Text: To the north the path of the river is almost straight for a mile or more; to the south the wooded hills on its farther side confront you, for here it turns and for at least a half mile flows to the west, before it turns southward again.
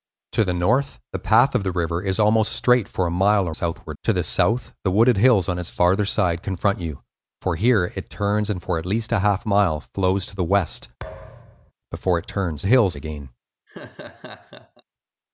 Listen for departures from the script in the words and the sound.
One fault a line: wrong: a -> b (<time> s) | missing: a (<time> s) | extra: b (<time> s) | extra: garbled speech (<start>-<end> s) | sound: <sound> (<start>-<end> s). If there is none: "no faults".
wrong: more -> southward (3.5 s)
sound: thud (11.0-11.7 s)
wrong: southward -> hills (12.6 s)
sound: laugh (13.7-14.8 s)